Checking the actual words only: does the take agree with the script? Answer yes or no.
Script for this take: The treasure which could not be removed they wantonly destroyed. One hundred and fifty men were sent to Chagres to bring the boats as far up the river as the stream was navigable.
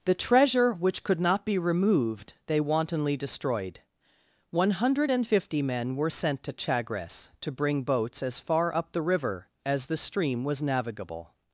no